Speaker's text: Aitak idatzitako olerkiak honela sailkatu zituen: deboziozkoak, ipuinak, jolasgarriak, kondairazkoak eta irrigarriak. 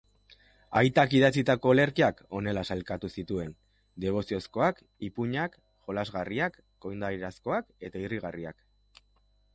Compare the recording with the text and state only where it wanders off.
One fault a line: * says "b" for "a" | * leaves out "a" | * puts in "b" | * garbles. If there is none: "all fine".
all fine